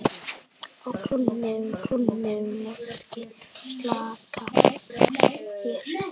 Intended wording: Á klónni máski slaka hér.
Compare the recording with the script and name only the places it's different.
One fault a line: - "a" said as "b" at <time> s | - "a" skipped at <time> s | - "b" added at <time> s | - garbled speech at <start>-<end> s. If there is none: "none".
- "klónni" added at 1.8 s
- garbled speech at 4.5-5.1 s